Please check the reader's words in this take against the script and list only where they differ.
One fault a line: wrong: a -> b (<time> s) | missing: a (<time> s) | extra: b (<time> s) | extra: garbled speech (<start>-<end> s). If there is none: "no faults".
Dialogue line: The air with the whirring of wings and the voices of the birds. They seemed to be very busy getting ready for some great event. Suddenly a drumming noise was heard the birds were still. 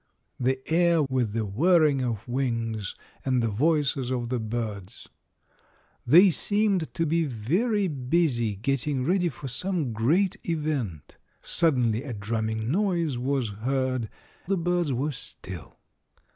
no faults